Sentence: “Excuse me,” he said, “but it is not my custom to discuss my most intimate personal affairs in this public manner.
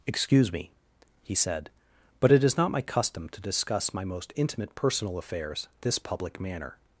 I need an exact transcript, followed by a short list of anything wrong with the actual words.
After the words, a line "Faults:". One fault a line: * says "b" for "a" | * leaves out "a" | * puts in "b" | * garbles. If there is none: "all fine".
“Excuse me,” he said, “but it is not my custom to discuss my most intimate personal affairs this public manner.
Faults:
* leaves out "in"